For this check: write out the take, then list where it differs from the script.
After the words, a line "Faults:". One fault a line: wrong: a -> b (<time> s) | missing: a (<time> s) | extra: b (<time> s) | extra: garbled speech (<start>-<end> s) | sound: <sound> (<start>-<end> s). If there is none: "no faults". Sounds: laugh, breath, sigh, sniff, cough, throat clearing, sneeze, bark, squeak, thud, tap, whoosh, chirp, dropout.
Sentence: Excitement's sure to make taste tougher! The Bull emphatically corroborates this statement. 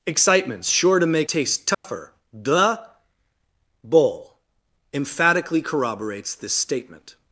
Excitement's sure to make taste tougher! The Bull emphatically corroborates this statement.
Faults:
sound: dropout (1.7-1.8 s)